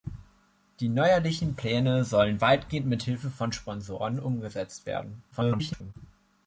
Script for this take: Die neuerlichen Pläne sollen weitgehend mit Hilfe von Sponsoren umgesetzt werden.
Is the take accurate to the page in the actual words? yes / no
no